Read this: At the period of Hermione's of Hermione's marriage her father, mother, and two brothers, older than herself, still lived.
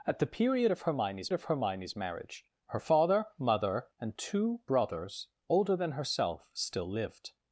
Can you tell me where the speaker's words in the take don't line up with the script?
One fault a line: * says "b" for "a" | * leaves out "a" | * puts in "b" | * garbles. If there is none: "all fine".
all fine